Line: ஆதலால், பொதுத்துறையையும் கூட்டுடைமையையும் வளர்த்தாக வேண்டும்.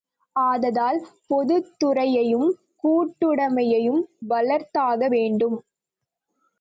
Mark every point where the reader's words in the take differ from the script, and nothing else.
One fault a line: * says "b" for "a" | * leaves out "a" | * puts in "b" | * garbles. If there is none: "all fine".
all fine